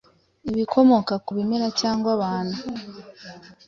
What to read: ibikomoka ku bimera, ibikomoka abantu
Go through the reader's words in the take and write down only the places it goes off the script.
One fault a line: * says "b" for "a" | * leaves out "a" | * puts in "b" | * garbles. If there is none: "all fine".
* says "cyangwa" for "ibikomoka"